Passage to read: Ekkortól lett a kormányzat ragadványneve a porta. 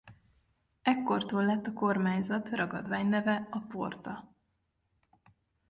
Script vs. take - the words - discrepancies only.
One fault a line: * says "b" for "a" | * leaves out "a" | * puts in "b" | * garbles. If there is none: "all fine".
all fine